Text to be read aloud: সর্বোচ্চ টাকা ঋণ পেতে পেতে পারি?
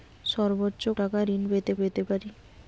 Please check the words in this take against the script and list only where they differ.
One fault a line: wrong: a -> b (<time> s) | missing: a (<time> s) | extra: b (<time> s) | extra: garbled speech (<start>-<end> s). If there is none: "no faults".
no faults